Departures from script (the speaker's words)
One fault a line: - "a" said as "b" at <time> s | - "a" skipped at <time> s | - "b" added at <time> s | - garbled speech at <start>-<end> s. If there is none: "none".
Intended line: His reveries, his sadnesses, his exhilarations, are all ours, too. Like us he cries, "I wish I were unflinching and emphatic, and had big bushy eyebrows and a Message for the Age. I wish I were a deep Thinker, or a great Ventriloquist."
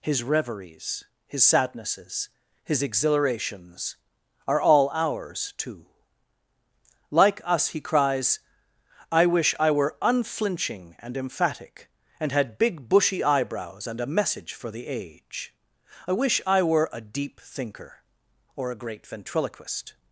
none